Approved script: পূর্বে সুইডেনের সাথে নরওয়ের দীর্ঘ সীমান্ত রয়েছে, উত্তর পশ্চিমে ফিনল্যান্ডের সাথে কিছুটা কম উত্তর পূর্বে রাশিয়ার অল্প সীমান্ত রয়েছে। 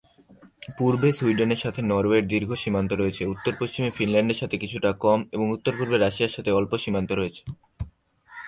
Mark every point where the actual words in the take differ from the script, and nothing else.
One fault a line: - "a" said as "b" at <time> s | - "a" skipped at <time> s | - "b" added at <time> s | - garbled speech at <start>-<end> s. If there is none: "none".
- "এবং" added at 5.3 s
- "সাথে" added at 6.4 s